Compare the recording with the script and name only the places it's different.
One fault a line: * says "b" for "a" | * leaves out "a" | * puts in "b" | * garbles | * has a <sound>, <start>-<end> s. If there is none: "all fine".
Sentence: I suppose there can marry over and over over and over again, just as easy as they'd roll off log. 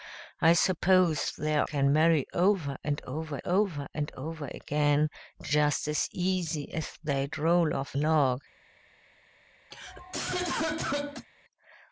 * has a cough, 9.7-11.3 s